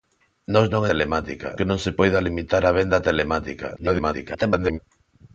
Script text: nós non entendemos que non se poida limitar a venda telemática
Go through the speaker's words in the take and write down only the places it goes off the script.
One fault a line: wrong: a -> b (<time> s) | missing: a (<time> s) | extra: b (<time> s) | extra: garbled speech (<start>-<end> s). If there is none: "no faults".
wrong: entendemos -> telemática (0.9 s)
extra: garbled speech (3.8-4.8 s)